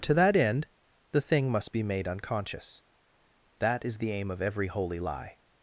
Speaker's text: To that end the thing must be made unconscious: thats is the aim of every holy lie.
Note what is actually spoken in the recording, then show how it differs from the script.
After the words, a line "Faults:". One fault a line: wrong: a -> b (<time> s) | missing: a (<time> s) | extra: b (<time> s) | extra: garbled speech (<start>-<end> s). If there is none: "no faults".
To that end the thing must be made unconscious: that is the aim of every holy lie.
Faults:
wrong: thats -> that (3.6 s)